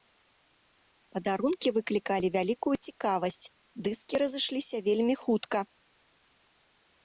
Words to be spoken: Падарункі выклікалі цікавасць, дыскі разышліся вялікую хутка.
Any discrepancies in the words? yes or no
yes